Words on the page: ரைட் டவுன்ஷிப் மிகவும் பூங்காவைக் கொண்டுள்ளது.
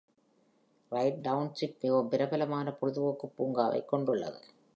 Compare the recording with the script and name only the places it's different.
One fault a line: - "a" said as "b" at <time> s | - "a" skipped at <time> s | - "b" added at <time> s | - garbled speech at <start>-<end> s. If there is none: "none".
- "பிரபலமான பொழுதுபோக்கு" added at 2.1 s